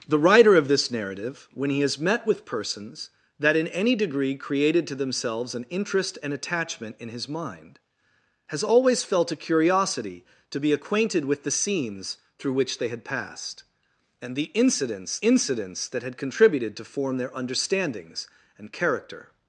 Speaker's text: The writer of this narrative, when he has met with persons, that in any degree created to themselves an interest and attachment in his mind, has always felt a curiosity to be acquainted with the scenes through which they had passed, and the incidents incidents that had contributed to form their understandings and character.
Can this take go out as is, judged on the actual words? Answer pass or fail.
pass